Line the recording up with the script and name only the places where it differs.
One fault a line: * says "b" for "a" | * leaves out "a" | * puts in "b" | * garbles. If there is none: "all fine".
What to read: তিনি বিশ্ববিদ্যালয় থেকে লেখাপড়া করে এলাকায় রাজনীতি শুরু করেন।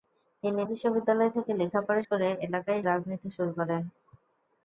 all fine